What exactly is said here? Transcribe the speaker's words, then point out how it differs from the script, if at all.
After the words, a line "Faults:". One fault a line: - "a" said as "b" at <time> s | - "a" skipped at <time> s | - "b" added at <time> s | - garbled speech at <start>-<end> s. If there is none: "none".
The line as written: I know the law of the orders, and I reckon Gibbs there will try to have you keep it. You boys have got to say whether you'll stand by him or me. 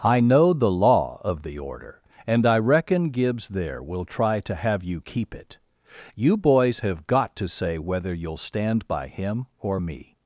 I know the law of the order, and I reckon Gibbs there will try to have you keep it. You boys have got to say whether you'll stand by him or me.
Faults:
- "orders" said as "order" at 1.6 s